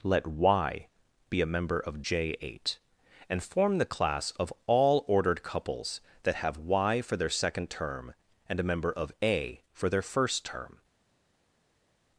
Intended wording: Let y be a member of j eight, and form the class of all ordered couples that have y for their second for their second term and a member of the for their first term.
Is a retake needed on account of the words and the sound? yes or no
yes